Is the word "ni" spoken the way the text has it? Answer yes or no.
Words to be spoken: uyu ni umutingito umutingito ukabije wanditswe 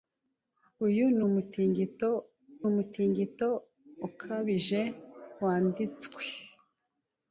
yes